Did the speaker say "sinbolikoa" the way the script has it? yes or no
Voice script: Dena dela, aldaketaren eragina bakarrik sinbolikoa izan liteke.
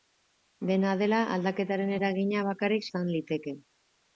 no